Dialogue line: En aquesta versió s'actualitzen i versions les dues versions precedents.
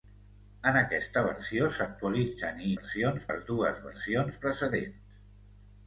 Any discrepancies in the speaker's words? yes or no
no